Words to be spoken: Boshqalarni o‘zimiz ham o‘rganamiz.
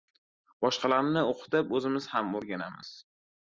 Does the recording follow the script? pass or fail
fail